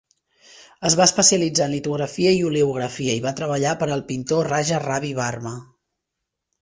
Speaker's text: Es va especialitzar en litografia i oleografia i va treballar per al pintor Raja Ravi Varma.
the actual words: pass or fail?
pass